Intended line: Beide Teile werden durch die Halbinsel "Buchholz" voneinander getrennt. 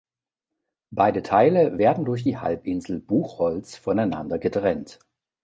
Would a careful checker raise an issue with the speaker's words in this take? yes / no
no